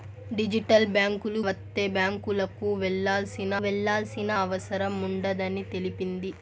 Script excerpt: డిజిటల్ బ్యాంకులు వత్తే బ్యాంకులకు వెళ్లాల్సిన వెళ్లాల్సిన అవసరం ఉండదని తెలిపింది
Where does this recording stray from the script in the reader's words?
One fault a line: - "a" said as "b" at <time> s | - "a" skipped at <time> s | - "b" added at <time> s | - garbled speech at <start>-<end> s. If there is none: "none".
none